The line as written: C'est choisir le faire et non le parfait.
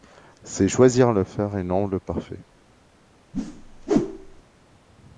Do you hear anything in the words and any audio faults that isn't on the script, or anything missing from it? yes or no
yes